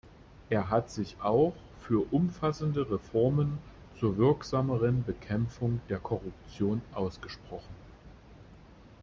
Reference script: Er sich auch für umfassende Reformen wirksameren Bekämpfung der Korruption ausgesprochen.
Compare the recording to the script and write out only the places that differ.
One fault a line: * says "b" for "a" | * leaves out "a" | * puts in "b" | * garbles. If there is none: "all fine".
* puts in "hat"
* puts in "zur"